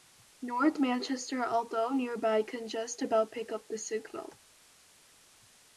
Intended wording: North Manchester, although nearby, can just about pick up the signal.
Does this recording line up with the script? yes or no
yes